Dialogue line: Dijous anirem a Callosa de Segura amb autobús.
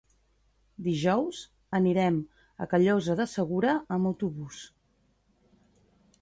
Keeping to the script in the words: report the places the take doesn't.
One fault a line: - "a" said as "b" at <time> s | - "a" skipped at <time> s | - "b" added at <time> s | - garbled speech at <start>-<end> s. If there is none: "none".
none